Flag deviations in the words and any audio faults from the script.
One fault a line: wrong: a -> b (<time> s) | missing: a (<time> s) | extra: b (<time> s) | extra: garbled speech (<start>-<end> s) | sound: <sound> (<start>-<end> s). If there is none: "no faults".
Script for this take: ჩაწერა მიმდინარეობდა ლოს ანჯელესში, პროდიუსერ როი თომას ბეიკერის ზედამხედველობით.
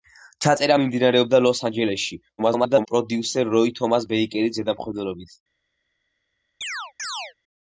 extra: garbled speech (2.4-2.9 s)
sound: chirp (6.6-7.3 s)